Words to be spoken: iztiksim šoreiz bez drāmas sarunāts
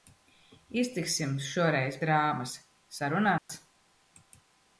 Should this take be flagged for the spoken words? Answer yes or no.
yes